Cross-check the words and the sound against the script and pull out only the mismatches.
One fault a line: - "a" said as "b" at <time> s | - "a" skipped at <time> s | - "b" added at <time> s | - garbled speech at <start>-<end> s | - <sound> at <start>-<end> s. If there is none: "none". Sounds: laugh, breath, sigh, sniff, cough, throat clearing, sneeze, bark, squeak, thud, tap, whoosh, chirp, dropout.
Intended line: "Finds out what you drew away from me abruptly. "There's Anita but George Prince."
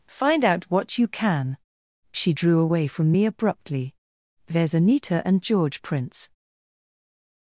- "Finds" said as "Find" at 0.1 s
- "can She" added at 1.1 s
- "but" said as "and" at 5.3 s